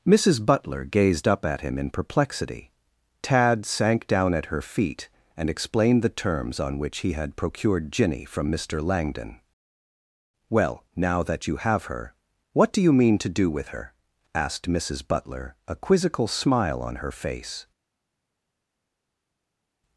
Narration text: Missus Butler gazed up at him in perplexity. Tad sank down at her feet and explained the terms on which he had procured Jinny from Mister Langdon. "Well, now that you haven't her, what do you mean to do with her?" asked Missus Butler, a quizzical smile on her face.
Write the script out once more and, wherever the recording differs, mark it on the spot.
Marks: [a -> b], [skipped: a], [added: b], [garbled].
Missus Butler gazed up at him in perplexity. Tad sank down at her feet and explained the terms on which he had procured Jinny from Mister Langdon. "Well, now that you [haven't -> have] her, what do you mean to do with her?" asked Missus Butler, a quizzical smile on her face.